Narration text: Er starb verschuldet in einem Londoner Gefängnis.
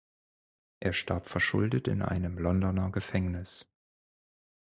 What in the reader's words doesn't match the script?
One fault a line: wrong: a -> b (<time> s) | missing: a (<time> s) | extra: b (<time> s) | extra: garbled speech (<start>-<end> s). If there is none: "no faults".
no faults